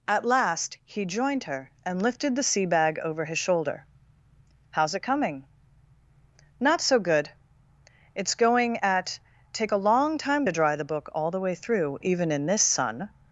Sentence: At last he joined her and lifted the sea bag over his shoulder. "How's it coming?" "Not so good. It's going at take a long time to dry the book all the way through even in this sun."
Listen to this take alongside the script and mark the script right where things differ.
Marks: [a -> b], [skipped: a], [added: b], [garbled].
At last he joined her and lifted the sea bag over his shoulder. "How's it coming?" "Not so good. It's going at take a long time to dry the book all the way through even in this sun."